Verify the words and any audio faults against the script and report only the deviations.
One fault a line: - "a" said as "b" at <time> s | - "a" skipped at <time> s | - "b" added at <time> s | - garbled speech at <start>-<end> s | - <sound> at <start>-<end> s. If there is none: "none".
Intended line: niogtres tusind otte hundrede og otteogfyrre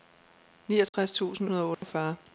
- dropout at 0.9-0.9 s
- "otte" skipped at 1.5 s
- dropout at 1.7-1.8 s